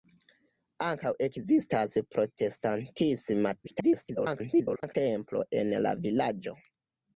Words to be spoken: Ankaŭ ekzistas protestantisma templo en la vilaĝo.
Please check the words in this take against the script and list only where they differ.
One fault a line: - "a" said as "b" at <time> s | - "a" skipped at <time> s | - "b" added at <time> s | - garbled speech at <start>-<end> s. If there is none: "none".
- garbled speech at 3.6-4.9 s